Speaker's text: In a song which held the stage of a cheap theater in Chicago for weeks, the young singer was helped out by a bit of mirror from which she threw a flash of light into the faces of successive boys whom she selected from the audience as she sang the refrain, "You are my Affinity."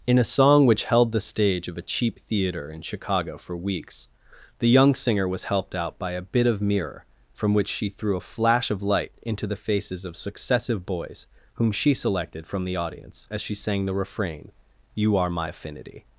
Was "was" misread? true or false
false